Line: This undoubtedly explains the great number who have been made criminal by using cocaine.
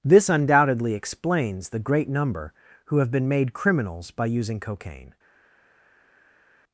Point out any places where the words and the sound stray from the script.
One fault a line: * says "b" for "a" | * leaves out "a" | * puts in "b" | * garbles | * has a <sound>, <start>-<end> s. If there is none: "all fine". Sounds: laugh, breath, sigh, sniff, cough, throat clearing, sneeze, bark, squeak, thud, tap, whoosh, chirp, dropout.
* says "criminals" for "criminal"